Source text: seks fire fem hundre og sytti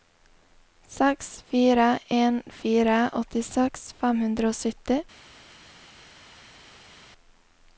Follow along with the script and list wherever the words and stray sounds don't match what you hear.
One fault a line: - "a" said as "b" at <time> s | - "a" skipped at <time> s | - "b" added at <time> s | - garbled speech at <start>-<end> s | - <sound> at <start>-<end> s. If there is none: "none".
- "en fire åttiseks" added at 2.2 s